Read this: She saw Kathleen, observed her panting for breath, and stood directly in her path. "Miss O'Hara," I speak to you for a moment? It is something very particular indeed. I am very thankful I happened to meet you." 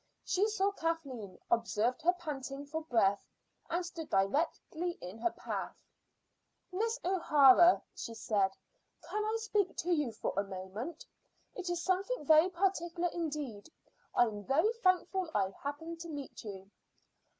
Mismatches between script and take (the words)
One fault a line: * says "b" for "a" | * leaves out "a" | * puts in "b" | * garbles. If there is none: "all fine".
* puts in "she said can"